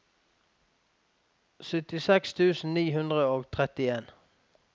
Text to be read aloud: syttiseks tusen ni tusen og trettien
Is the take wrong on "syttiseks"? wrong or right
right